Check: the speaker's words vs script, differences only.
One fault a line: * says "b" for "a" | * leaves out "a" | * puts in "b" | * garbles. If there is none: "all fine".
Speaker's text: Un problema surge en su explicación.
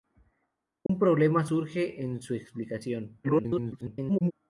* garbles